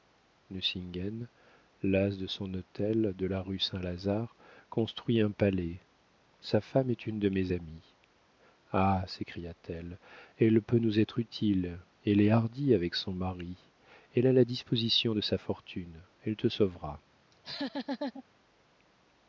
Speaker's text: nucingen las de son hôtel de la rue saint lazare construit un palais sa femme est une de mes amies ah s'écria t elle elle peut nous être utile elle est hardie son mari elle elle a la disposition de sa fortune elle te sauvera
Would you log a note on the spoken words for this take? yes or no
yes